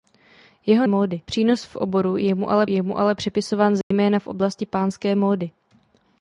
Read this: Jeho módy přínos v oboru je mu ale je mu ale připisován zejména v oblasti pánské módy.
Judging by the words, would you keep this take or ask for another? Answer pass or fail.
pass